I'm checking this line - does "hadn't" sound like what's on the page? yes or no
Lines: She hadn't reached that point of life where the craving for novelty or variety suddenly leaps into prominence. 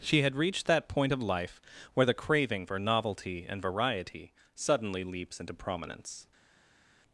no